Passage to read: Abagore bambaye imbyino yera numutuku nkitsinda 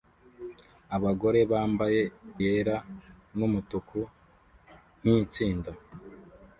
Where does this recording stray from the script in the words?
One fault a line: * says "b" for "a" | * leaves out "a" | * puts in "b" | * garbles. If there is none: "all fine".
* leaves out "imbyino"